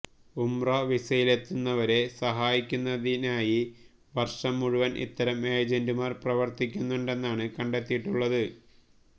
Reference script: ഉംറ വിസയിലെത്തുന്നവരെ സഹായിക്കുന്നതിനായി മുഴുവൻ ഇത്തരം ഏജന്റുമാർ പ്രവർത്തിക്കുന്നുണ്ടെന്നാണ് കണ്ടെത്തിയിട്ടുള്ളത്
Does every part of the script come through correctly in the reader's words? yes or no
no